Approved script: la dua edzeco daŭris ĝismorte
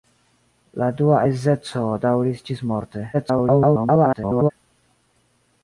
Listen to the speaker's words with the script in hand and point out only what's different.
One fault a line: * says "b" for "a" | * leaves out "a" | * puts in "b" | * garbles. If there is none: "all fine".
* garbles